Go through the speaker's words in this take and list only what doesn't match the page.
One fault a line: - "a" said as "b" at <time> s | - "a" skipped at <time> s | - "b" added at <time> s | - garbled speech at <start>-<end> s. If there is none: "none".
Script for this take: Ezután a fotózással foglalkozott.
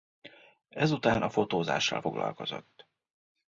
none